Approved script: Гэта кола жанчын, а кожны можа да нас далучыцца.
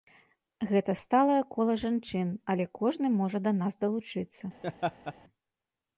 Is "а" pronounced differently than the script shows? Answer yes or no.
yes